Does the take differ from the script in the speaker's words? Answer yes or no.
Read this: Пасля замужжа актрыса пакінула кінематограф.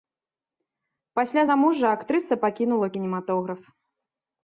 no